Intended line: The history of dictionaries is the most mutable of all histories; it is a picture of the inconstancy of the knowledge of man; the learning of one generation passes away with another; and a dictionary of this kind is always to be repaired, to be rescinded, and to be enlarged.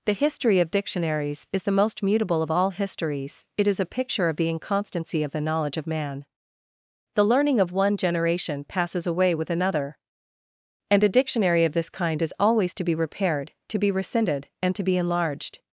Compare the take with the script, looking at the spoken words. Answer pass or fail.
pass